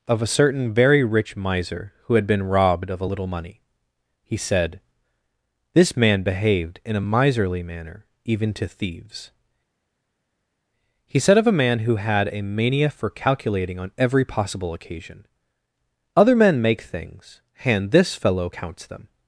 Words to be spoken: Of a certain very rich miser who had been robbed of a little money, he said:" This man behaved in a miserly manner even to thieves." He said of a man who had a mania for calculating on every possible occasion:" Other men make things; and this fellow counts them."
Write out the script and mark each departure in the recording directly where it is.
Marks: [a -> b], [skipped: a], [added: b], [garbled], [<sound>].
Of a certain very rich miser who had been robbed of a little money, he said:" This man behaved in a miserly manner even to thieves." He said of a man who had a mania for calculating on every possible occasion:" Other men make things; and this fellow counts them."